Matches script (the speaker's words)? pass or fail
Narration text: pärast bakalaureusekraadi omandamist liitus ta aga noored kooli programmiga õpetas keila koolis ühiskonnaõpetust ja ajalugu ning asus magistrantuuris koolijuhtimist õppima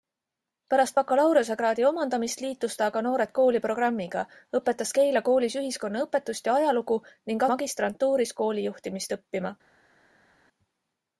fail